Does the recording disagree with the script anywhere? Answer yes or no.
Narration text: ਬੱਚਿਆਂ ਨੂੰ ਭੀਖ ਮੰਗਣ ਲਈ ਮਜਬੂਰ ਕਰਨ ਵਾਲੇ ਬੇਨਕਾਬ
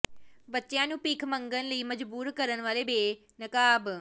no